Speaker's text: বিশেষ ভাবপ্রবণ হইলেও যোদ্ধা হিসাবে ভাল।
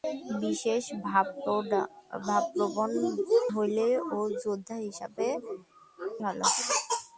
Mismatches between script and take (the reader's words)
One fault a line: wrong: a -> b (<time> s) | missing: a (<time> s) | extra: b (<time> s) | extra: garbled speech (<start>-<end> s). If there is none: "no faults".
no faults